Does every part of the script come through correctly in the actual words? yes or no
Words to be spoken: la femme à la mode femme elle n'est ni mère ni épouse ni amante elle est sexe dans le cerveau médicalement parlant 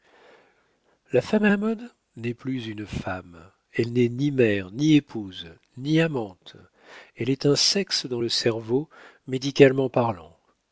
no